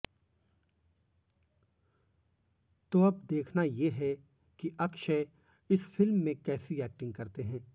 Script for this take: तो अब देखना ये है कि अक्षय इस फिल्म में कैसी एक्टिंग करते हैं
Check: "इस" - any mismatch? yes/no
no